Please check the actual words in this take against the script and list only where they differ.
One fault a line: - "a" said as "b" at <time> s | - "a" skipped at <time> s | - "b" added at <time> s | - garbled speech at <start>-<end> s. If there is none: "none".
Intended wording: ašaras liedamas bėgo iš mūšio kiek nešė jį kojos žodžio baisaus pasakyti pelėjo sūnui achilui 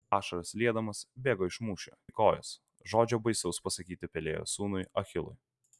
- "kiek nešė" skipped at 1.9 s